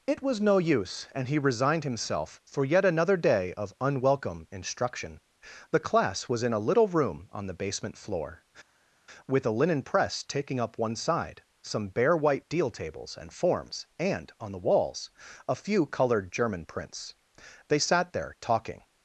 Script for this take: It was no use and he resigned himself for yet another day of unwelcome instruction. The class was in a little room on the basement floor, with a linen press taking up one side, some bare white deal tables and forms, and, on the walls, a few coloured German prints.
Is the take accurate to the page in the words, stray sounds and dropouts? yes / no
no